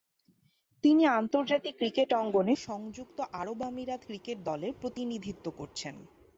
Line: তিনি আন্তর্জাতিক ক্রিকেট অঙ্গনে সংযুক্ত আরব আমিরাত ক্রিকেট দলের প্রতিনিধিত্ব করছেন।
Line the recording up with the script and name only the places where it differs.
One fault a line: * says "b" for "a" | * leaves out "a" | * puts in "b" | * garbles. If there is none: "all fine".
all fine